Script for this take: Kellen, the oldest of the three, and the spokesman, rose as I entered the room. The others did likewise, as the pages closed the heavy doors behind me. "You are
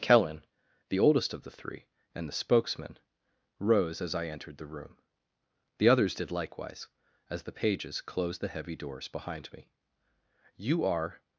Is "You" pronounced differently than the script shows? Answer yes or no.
no